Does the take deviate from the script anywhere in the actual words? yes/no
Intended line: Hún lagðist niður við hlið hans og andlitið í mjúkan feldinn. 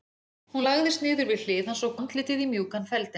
no